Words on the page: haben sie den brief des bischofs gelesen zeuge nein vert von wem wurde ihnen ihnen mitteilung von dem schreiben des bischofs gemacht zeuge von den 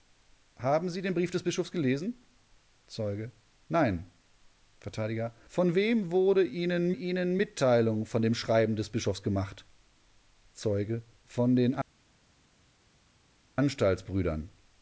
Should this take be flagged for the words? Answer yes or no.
no